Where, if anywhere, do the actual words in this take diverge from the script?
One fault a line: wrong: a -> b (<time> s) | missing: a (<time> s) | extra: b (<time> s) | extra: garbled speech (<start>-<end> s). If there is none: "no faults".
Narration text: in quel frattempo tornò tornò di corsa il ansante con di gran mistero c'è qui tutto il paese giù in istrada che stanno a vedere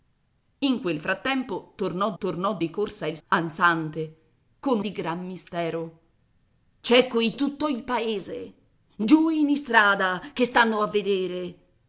no faults